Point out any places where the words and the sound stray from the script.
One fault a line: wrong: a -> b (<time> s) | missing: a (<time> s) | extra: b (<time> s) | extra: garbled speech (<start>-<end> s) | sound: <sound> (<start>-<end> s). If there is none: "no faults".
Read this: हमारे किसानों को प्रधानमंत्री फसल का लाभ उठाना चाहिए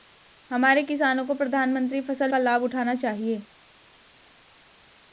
no faults